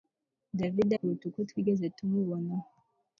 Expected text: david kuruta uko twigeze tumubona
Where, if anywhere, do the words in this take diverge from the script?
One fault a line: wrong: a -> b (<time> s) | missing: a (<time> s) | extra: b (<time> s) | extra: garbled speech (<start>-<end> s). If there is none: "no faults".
no faults